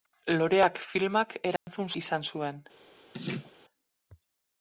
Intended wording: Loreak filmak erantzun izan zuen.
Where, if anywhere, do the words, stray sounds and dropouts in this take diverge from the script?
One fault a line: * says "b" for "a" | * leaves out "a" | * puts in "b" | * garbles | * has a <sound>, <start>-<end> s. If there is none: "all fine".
* has a dropout, 1.6-1.7 s
* has a laugh, 3.1-3.5 s